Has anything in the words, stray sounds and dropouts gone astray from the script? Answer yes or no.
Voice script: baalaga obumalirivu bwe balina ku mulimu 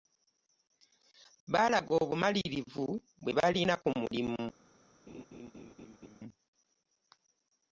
yes